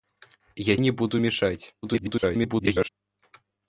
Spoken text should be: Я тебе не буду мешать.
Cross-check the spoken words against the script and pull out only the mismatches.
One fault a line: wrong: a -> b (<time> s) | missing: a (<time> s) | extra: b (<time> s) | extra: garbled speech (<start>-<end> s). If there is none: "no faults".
missing: тебе (0.8 s)
extra: garbled speech (1.8-2.9 s)